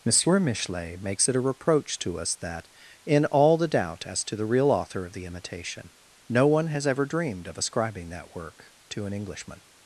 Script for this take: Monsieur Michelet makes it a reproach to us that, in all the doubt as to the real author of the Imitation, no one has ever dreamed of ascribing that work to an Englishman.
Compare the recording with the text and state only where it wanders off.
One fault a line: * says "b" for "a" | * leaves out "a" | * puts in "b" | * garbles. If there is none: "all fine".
all fine